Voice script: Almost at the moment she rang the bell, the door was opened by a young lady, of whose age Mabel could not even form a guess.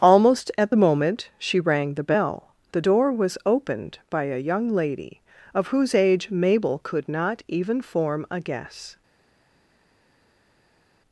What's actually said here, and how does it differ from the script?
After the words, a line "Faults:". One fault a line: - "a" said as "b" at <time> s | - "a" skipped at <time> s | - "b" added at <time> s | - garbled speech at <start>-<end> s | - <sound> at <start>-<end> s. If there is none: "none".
Almost at the moment she rang the bell, the door was opened by a young lady, of whose age Mabel could not even form a guess.
Faults:
none